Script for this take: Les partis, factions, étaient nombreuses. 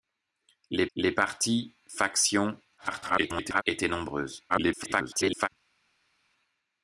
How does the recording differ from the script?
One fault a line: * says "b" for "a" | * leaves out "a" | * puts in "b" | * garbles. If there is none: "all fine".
* puts in "les"
* garbles
* garbles